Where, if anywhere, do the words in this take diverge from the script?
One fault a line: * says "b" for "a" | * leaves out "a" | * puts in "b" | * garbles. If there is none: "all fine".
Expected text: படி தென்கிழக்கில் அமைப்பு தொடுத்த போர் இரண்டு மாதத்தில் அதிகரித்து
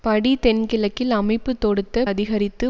* leaves out "போர் இரண்டு மாதத்தில்"